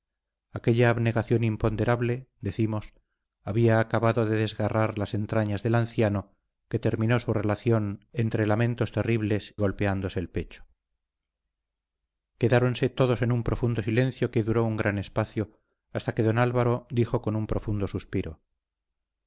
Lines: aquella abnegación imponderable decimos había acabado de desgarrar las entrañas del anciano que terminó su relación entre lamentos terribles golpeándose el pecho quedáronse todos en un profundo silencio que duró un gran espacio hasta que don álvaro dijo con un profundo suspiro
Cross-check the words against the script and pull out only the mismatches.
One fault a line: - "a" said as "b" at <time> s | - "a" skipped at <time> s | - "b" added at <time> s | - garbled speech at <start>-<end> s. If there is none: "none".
none